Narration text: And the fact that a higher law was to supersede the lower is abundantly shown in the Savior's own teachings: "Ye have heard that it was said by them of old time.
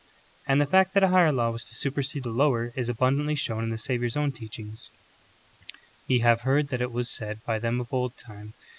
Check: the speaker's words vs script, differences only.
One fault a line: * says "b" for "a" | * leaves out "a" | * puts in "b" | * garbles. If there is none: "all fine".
all fine